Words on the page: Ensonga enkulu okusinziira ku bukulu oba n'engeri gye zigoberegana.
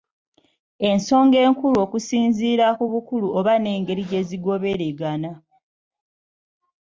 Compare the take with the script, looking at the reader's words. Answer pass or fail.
pass